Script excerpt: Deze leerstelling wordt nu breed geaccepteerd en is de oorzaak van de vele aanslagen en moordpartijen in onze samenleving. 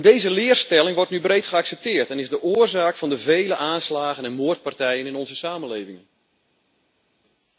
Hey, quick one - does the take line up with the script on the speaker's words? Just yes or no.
yes